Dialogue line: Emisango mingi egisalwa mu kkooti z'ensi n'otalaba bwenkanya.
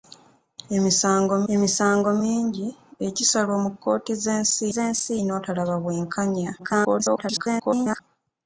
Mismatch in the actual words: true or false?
true